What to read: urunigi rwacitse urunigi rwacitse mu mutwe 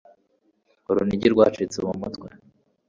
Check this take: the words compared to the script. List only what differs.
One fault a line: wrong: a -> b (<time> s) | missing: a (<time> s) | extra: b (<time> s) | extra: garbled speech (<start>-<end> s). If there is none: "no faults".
missing: urunigi rwacitse (1.8 s)